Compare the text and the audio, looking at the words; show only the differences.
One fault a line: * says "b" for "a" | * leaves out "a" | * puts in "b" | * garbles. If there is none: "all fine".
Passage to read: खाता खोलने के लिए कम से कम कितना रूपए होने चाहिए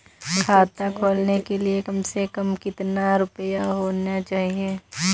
all fine